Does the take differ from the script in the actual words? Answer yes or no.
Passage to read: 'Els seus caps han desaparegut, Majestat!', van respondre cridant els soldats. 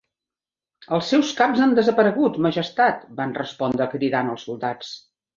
no